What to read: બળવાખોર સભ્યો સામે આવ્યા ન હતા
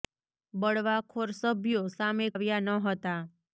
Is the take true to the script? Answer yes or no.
yes